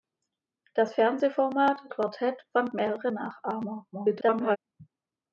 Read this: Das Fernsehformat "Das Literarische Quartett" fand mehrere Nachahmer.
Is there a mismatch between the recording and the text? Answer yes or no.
yes